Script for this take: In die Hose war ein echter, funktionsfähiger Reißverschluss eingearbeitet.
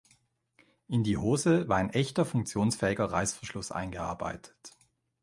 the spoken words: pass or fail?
pass